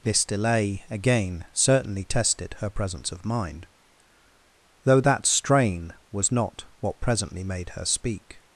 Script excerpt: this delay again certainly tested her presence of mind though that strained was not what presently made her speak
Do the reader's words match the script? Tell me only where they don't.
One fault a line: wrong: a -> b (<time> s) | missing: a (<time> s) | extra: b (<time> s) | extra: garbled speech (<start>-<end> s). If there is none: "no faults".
wrong: strained -> strain (5.2 s)